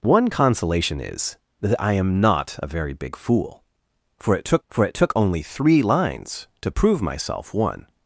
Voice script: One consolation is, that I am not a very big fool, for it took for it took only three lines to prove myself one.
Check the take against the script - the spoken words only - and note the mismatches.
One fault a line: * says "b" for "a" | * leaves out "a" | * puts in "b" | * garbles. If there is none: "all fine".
all fine